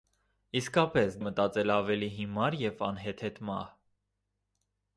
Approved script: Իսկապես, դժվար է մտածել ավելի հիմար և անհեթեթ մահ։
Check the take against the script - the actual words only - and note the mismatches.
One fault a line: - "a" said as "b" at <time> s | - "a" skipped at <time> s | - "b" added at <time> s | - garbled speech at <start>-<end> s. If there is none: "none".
- "դժվար" skipped at 1.2 s